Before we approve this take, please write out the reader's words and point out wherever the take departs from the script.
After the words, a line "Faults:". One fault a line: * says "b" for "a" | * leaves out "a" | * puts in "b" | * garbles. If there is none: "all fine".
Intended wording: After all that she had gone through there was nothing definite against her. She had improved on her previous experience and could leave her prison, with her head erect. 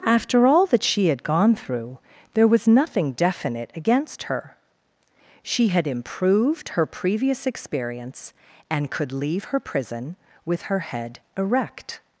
After all that she had gone through there was nothing definite against her. She had improved her previous experience and could leave her prison, with her head erect.
Faults:
* leaves out "on"